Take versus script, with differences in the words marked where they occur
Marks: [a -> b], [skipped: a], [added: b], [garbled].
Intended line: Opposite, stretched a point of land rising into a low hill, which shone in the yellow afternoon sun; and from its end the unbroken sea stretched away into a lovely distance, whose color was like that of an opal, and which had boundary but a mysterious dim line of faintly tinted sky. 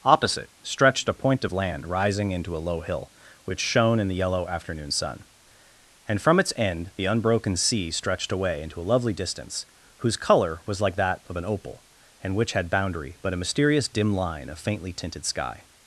Opposite, stretched a point of land rising into a low hill, which shone in the yellow afternoon sun; and from its end the unbroken sea stretched away into a lovely distance, whose color was like that of an opal, and which had boundary but a mysterious dim line of faintly tinted sky.